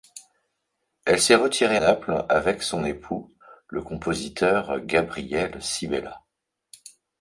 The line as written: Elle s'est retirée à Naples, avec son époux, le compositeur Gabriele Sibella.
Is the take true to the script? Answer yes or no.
no